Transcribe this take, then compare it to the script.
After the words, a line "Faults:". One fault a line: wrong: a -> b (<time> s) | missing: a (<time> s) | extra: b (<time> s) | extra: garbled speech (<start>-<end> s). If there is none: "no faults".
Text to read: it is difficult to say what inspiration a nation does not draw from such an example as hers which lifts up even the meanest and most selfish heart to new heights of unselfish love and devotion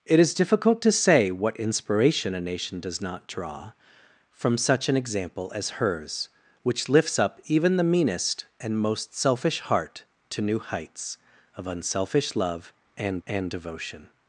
it is difficult to say what inspiration a nation does not draw from such an example as hers which lifts up even the meanest and most selfish heart to new heights of unselfish love and and devotion
Faults:
extra: and (13.3 s)